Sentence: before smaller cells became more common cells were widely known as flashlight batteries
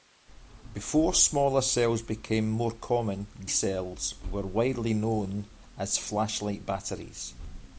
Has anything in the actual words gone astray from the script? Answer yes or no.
no